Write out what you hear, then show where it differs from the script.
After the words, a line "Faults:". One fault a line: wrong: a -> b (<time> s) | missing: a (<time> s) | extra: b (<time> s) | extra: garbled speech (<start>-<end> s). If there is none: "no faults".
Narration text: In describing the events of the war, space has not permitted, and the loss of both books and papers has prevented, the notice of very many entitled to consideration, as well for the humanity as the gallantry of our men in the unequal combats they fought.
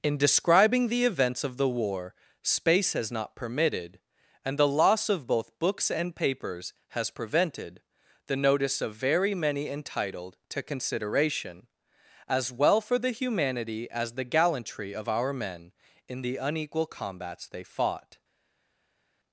In describing the events of the war, space has not permitted, and the loss of both books and papers has prevented, the notice of very many entitled to consideration, as well for the humanity as the gallantry of our men in the unequal combats they fought.
Faults:
no faults